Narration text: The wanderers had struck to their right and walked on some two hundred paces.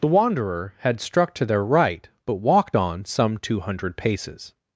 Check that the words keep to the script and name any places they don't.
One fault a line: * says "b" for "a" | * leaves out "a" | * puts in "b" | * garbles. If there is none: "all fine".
* says "wanderer" for "wanderers"
* says "but" for "and"